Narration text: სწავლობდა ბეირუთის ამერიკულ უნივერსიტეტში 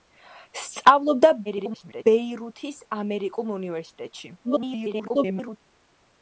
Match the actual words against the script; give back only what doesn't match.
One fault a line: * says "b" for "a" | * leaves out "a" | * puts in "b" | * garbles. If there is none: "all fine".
* garbles
* garbles